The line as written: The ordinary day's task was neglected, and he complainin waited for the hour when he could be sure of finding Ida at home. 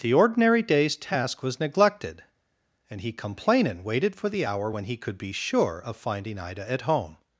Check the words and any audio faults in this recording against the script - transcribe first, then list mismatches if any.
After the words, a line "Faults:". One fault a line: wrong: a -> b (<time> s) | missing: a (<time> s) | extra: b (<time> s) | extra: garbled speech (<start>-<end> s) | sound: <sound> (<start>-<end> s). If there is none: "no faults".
The ordinary day's task was neglected, and he complainin waited for the hour when he could be sure of finding Ida at home.
Faults:
no faults